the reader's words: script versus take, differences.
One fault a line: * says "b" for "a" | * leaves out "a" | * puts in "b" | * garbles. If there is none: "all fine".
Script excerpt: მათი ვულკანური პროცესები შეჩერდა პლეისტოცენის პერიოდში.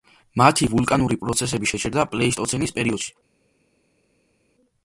all fine